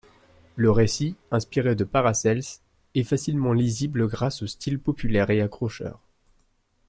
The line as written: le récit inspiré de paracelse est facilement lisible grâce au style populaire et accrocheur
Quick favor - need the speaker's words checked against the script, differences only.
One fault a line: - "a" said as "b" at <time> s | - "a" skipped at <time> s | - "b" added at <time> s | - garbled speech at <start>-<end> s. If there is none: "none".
none